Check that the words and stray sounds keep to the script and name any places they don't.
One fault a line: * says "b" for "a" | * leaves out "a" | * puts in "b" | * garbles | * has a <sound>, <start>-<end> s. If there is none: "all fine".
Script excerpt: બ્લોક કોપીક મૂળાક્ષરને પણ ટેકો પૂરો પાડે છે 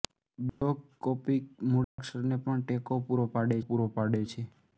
* has a dropout, 0.5-0.6 s
* has a dropout, 1.8-2.0 s
* puts in "પૂરો પાડે"